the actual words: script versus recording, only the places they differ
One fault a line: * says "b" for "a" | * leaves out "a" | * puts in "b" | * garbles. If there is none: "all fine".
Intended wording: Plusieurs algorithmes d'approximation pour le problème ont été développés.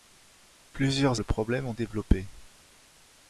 * leaves out "algorithmes d'approximation pour"
* leaves out "été"